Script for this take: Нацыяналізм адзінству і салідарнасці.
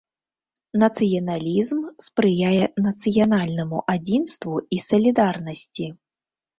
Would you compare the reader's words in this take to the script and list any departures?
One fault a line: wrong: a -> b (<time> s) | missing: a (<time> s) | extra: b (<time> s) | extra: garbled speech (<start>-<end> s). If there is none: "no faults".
extra: спрыяе нацыянальнаму (2.1 s)